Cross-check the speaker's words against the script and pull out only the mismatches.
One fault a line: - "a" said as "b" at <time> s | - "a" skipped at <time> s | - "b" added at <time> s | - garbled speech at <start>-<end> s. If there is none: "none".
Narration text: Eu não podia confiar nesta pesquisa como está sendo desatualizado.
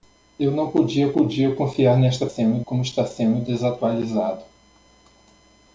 - "podia" added at 1.1 s
- "pesquisa" said as "sendo" at 2.2 s